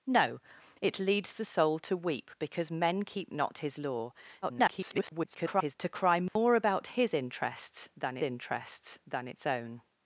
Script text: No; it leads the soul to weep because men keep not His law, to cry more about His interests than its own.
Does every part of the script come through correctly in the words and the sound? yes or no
no